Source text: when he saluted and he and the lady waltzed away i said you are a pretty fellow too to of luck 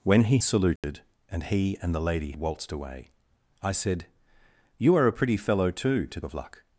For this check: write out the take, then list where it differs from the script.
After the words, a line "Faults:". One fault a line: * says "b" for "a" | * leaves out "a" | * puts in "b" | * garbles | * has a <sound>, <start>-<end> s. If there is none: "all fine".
when he saluted and he and the lady waltzed away i said you are a pretty fellow too to of luck
Faults:
* has a dropout, 0.8-0.8 s